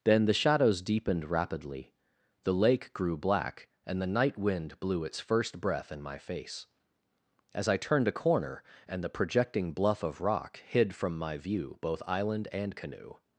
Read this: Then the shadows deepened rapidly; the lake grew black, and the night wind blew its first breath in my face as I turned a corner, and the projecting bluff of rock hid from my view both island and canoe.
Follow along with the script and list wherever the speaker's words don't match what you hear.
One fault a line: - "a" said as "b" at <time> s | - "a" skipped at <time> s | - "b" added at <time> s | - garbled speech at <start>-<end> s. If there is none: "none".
none